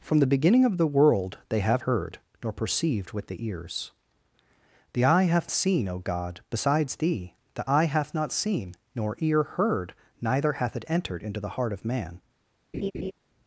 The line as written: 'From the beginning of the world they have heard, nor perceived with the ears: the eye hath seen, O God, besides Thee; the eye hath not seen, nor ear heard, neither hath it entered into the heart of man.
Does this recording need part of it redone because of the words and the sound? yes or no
yes